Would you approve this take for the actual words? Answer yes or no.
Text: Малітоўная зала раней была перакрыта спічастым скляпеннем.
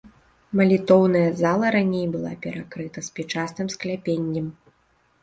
yes